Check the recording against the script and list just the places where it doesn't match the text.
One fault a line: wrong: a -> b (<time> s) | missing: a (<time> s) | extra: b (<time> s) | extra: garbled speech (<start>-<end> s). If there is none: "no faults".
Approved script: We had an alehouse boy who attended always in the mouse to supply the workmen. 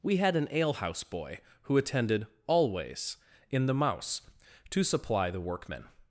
no faults